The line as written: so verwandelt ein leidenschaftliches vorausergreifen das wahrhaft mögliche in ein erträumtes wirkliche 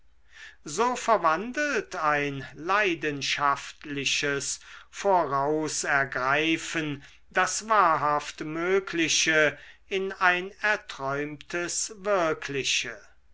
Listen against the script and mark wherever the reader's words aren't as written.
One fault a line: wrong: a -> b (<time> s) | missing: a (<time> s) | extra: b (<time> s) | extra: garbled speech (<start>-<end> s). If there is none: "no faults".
no faults